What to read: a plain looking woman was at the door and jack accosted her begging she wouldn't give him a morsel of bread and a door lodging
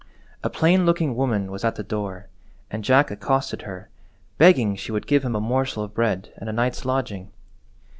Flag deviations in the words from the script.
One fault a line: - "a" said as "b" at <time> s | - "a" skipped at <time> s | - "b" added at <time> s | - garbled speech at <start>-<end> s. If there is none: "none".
- "wouldn't" said as "would" at 4.9 s
- "door" said as "night's" at 6.5 s